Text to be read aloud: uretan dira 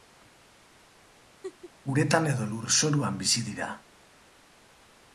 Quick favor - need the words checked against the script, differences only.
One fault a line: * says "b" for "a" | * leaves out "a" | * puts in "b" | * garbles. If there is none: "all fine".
* puts in "edo lurzoruan bizi"